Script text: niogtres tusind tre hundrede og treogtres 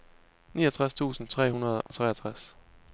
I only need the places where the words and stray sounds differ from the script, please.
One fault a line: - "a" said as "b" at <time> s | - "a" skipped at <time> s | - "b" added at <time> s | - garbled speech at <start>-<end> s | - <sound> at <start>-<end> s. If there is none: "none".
- dropout at 1.9-1.9 s